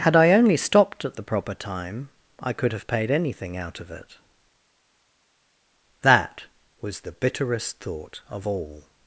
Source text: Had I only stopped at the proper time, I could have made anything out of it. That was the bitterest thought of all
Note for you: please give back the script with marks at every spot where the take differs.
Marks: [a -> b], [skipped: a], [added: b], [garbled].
Had I only stopped at the proper time, I could have [made -> paid] anything out of it. That was the bitterest thought of all